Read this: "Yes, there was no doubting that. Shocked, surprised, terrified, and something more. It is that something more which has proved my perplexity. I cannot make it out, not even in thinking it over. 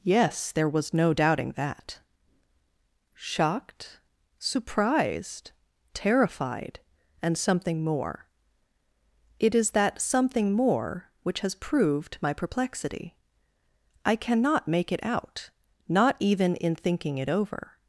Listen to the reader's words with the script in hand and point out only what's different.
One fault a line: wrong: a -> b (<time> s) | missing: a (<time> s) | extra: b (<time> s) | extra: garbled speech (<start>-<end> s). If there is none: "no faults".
no faults